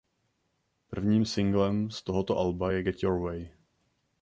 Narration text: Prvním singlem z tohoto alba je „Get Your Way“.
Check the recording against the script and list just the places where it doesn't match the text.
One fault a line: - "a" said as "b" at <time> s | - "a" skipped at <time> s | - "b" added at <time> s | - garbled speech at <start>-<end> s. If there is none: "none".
none